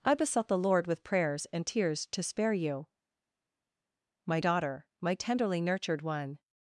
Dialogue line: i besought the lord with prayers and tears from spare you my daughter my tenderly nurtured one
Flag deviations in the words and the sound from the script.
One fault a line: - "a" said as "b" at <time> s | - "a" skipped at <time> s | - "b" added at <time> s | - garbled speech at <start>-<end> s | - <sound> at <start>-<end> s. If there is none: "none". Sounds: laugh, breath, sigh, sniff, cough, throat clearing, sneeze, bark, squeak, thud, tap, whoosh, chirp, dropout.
- "from" said as "to" at 2.1 s